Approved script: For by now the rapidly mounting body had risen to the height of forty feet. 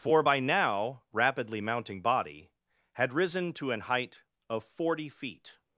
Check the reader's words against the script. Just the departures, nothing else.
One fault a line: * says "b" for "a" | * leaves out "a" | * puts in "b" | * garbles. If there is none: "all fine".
* leaves out "the"
* says "an" for "the"